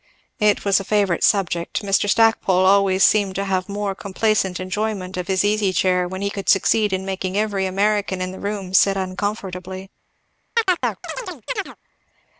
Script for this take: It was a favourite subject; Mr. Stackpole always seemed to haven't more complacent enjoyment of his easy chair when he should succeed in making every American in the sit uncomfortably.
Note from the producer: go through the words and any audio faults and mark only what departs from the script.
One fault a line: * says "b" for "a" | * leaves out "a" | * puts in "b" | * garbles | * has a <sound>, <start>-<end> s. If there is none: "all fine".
* says "have" for "haven't"
* says "could" for "should"
* puts in "room"
* has a chirp, 10.6-11.8 s